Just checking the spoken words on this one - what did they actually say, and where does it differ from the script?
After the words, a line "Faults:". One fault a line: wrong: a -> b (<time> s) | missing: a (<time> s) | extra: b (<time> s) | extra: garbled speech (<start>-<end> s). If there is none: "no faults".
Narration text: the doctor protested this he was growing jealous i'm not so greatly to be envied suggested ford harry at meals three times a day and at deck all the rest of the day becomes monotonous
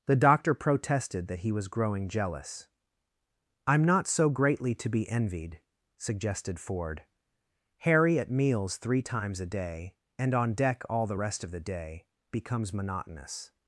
the doctor protested that he was growing jealous i'm not so greatly to be envied suggested ford harry at meals three times a day and on deck all the rest of the day becomes monotonous
Faults:
wrong: this -> that (1.3 s)
wrong: at -> on (10.3 s)